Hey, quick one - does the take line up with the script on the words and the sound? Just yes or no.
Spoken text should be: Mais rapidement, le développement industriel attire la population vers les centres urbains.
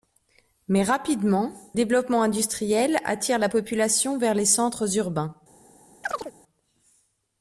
no